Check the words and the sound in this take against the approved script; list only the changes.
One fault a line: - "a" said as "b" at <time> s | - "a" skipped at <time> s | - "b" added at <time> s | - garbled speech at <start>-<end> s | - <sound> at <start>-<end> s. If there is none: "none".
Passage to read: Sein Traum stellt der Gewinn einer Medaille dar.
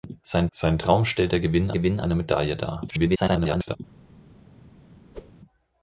- "sein" added at 0.5 s
- "Gewinn" added at 1.7 s
- garbled speech at 2.9-3.8 s
- whoosh at 5.1-5.3 s